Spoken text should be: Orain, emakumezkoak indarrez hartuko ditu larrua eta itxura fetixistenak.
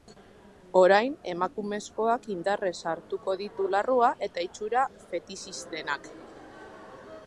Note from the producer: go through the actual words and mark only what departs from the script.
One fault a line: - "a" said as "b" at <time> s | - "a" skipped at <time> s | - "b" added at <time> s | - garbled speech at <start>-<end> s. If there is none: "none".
none